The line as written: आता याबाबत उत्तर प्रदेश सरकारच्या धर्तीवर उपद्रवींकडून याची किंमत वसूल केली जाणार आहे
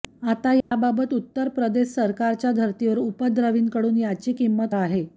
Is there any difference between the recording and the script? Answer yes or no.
yes